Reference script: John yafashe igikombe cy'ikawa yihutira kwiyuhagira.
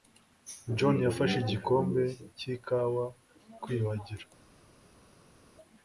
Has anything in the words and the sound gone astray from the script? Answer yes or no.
yes